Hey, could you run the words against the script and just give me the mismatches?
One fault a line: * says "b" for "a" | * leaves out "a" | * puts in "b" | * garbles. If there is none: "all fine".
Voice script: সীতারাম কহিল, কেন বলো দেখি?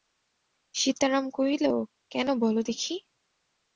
all fine